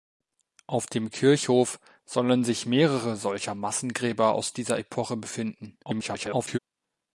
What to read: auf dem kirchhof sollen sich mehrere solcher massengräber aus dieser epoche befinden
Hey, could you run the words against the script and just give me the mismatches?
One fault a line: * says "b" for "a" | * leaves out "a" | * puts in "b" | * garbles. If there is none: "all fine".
* garbles